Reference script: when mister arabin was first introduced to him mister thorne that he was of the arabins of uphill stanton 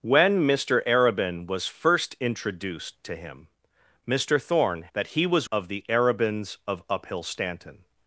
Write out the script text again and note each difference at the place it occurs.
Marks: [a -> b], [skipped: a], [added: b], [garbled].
when mister arabin was first introduced to him mister thorne that he was of the arabins of uphill stanton